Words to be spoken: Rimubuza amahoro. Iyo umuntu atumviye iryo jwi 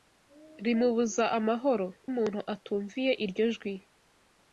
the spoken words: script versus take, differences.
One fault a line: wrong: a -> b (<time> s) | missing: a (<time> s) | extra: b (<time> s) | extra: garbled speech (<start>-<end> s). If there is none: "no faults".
missing: Iyo (1.9 s)